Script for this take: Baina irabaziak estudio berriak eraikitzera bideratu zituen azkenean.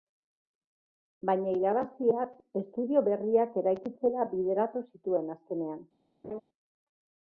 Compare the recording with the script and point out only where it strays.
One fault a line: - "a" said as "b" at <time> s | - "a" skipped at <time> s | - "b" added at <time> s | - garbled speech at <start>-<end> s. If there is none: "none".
none